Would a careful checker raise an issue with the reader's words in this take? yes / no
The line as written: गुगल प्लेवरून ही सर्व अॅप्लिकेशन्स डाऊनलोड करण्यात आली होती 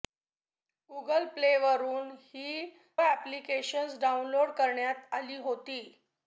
yes